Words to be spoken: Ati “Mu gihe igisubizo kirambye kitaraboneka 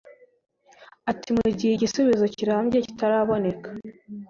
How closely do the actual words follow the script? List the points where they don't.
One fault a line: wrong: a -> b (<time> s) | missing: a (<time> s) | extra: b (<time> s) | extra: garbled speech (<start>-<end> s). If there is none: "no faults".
no faults